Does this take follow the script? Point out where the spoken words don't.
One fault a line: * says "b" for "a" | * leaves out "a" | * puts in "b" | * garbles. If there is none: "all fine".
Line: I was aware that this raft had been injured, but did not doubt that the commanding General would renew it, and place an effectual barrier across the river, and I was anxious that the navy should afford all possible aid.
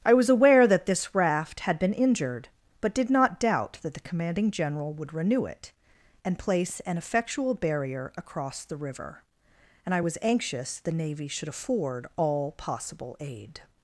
* leaves out "that"